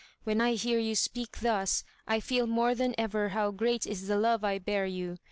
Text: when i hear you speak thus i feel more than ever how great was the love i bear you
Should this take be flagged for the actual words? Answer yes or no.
yes